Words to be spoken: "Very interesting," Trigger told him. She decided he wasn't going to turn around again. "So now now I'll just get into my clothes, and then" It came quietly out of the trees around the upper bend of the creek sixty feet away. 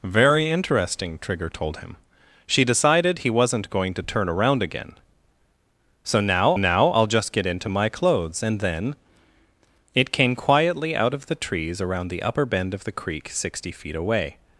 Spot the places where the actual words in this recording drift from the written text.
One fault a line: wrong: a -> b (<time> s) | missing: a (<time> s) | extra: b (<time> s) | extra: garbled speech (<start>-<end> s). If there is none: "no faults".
no faults